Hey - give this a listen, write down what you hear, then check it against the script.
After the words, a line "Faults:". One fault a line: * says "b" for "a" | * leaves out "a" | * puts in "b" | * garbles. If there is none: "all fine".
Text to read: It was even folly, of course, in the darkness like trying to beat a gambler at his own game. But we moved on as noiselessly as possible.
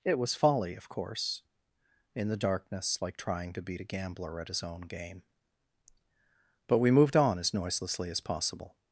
It was folly, of course, in the darkness like trying to beat a gambler at his own game. But we moved on as noiselessly as possible.
Faults:
* leaves out "even"